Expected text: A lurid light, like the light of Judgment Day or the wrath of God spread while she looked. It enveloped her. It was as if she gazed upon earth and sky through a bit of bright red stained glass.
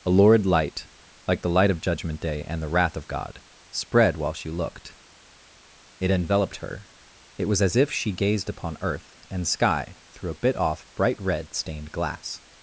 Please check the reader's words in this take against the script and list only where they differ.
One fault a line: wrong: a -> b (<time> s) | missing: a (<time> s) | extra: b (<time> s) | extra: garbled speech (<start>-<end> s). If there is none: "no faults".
wrong: or -> and (2.5 s)
wrong: of -> off (10.5 s)